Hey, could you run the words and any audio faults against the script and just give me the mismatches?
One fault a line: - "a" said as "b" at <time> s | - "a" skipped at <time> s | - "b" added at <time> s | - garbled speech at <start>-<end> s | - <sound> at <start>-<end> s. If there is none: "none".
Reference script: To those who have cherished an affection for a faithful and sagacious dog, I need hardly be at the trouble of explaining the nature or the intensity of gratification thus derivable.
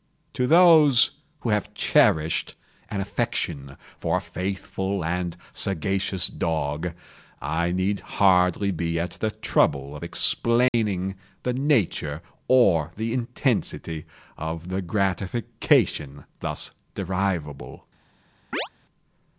- dropout at 10.7-10.7 s
- "the" added at 14.7 s
- chirp at 18.5-18.7 s